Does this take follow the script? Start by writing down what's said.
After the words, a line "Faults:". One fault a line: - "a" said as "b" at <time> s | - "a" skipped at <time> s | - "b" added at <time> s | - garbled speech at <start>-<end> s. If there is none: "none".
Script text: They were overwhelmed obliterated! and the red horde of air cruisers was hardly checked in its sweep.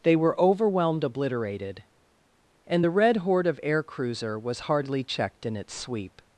They were overwhelmed obliterated! and the red horde of air cruiser was hardly checked in its sweep.
Faults:
- "cruisers" said as "cruiser" at 3.8 s